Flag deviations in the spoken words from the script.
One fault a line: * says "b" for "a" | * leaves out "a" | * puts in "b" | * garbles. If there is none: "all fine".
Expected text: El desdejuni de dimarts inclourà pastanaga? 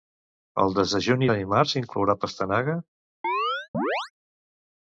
all fine